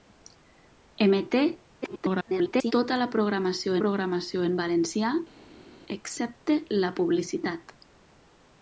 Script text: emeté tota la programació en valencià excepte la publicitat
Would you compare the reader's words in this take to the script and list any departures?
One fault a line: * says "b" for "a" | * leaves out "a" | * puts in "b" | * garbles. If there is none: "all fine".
* garbles
* puts in "programació"